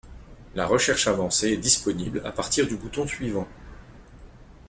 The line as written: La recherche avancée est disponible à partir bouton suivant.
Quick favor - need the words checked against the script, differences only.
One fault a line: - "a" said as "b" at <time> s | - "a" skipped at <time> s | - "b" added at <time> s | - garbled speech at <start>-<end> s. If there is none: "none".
- "du" added at 2.7 s